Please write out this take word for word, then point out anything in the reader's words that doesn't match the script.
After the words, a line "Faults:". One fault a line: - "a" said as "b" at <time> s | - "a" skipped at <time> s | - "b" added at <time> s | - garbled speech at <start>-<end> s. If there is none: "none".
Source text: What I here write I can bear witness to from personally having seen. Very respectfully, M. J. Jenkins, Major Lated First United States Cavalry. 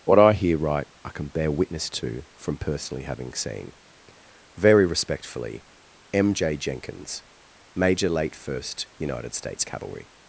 What I here write I can bear witness to from personally having seen. Very respectfully, M. J. Jenkins, Major Late First United States Cavalry.
Faults:
- "Lated" said as "Late" at 8.1 s